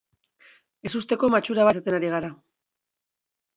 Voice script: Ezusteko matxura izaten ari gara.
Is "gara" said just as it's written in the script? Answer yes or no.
yes